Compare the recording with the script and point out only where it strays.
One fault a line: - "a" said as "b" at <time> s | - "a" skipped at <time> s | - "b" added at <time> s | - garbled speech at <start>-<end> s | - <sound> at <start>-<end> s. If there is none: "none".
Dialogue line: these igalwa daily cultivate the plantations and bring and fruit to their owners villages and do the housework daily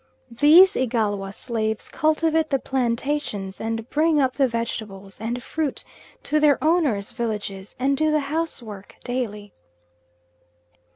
- "daily" said as "slaves" at 1.3 s
- "up the vegetables" added at 4.2 s